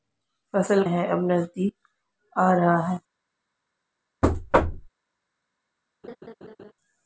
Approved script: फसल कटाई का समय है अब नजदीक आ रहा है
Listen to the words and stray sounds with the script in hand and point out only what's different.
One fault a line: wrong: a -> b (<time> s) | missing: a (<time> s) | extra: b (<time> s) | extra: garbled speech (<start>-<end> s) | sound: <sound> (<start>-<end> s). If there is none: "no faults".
missing: कटाई का समय (0.8 s)
sound: thud (4.2-4.9 s)
sound: laugh (6.0-6.7 s)